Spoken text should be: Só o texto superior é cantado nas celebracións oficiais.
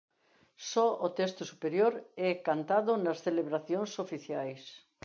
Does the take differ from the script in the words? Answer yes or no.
no